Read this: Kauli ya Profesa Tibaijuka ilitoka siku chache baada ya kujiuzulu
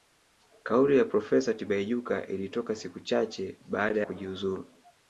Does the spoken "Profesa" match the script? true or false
true